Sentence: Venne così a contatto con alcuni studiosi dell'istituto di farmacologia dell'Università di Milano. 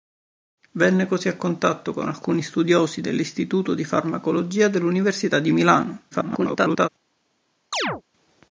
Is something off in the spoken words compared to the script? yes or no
yes